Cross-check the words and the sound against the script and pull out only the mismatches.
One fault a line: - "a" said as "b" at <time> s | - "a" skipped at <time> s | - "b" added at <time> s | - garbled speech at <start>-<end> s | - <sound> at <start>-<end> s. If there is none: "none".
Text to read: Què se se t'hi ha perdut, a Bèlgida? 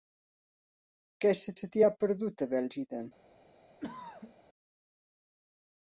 - throat clearing at 3.8-4.3 s